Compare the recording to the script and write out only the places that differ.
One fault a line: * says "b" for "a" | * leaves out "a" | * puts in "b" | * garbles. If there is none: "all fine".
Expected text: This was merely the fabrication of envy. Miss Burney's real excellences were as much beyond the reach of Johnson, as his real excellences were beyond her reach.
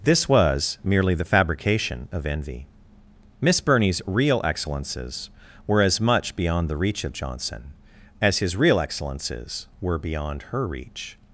all fine